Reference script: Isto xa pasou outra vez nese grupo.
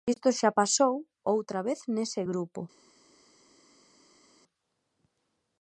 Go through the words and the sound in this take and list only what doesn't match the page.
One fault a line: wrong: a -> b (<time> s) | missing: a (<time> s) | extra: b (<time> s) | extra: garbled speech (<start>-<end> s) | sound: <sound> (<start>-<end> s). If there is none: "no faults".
no faults